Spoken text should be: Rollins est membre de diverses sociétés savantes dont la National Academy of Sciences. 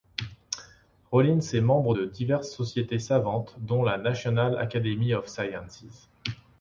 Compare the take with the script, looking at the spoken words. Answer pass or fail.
pass